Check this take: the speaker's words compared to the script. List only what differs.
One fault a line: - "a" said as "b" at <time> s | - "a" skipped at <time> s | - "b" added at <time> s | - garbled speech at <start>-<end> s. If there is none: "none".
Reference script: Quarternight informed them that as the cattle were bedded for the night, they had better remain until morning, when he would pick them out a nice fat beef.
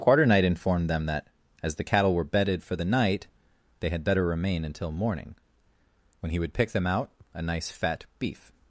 none